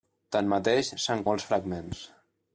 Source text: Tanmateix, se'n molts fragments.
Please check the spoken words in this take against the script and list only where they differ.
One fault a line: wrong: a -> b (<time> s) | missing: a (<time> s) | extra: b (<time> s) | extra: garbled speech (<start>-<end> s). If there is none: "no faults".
no faults